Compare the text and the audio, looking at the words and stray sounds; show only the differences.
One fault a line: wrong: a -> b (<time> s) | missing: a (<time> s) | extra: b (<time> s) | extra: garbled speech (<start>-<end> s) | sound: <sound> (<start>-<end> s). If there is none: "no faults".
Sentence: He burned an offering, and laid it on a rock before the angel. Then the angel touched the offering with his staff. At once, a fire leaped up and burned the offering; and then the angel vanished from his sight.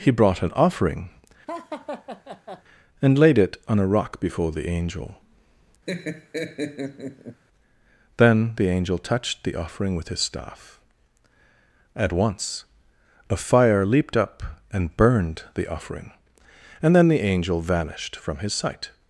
wrong: burned -> brought (0.1 s)
sound: laugh (1.5-2.6 s)
sound: laugh (5.9-7.4 s)